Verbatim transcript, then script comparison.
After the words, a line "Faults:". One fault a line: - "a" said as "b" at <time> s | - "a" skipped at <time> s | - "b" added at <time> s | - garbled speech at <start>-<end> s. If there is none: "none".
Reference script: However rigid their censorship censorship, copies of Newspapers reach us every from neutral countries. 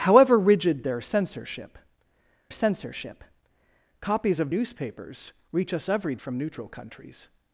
However rigid their censorship censorship, copies of Newspapers reach us every from neutral countries.
Faults:
none